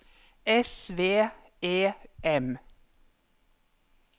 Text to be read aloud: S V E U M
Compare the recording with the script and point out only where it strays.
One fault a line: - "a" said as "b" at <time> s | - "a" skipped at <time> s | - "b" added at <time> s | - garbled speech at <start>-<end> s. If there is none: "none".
- "U" skipped at 1.9 s